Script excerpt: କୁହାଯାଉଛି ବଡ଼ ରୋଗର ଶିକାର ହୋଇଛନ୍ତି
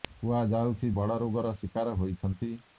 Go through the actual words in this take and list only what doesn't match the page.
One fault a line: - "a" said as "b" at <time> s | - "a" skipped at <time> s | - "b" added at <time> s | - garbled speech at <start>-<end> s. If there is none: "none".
none